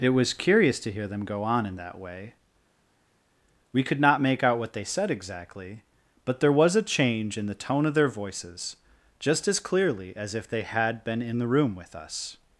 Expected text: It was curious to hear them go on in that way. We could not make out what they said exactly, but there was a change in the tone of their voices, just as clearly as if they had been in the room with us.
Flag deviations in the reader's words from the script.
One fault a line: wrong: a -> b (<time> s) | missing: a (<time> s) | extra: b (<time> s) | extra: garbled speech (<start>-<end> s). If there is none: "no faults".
no faults